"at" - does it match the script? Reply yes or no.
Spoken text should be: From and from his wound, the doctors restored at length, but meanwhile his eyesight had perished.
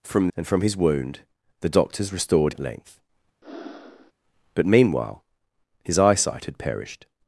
yes